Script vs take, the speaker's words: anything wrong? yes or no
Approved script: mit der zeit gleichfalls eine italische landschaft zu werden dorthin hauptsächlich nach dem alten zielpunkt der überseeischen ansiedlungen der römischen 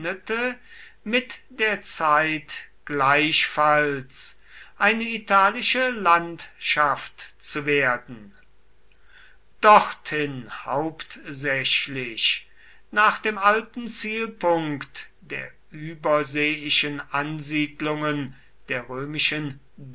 no